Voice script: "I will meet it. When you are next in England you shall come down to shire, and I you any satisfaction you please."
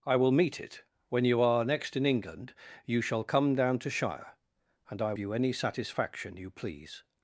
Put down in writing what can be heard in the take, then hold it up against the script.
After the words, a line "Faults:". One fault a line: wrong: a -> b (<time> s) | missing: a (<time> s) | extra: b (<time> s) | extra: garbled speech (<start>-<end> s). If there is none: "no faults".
"I will meet it. When you are next in England you shall come down to shire, and I you any satisfaction you please."
Faults:
no faults